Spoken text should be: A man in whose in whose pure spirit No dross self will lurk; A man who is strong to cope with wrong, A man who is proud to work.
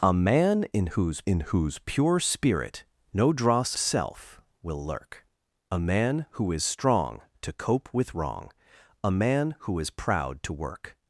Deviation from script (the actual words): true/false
false